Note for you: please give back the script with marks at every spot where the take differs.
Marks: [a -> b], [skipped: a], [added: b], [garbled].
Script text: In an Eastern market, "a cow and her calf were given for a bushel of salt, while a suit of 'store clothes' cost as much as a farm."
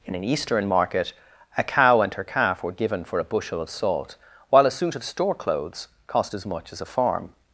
In an Eastern market, "a cow and her calf were given for a bushel of salt, while a suit of 'store clothes' cost as much as a farm."